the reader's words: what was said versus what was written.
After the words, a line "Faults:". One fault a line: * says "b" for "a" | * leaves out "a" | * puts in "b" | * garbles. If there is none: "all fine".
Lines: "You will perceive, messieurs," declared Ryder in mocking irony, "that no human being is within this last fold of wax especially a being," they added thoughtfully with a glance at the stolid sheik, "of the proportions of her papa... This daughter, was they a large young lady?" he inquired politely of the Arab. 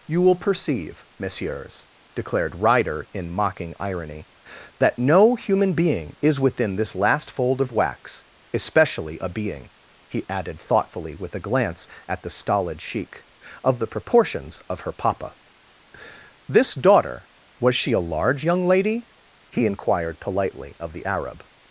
"You will perceive, messieurs," declared Ryder in mocking irony, "that no human being is within this last fold of wax especially a being," he added thoughtfully with a glance at the stolid sheik, "of the proportions of her papa... This daughter, was she a large young lady?" he inquired politely of the Arab.
Faults:
* says "he" for "they"
* says "she" for "they"